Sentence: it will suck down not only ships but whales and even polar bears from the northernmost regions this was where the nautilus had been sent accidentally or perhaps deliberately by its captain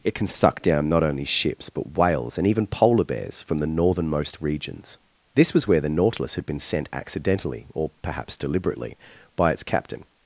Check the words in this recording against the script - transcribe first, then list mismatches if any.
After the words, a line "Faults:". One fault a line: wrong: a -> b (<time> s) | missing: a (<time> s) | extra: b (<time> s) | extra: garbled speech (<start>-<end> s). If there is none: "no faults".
it can suck down not only ships but whales and even polar bears from the northernmost regions this was where the nautilus had been sent accidentally or perhaps deliberately by its captain
Faults:
wrong: will -> can (0.1 s)